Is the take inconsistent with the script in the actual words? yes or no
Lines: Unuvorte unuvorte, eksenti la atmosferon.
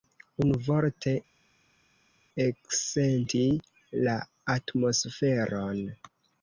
yes